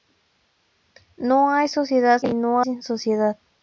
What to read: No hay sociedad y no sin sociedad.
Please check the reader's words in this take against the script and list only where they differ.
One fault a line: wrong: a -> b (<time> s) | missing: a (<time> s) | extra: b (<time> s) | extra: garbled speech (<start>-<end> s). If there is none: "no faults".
no faults